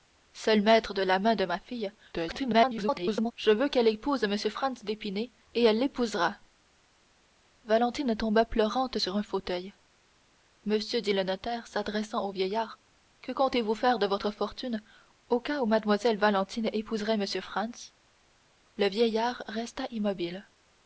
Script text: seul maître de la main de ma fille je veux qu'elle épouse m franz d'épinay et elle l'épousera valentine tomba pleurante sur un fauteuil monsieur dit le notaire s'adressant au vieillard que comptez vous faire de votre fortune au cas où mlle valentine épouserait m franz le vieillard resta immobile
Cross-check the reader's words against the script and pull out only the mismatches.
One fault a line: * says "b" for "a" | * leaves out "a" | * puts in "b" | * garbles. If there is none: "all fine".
* garbles